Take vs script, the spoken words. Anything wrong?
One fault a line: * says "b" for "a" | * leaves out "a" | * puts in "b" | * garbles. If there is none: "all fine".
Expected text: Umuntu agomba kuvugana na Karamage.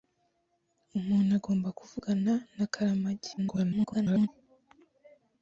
* garbles